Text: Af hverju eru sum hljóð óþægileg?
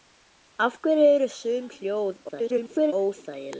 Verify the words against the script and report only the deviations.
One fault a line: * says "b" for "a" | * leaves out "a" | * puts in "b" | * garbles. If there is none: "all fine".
* garbles